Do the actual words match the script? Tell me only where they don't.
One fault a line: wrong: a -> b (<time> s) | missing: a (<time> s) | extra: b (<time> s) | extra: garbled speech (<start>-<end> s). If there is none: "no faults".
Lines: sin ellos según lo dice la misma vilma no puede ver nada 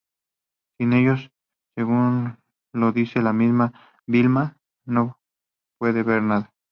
no faults